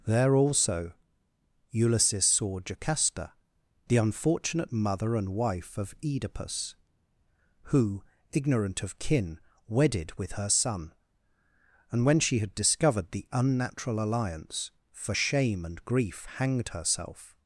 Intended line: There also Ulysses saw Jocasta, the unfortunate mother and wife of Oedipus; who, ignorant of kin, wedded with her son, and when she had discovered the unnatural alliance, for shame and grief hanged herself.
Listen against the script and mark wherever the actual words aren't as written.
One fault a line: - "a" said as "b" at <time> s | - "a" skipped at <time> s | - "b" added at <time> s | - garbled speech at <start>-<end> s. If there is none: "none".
none